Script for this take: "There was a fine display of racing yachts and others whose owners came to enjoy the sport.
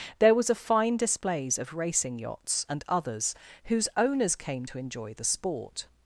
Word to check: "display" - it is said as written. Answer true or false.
false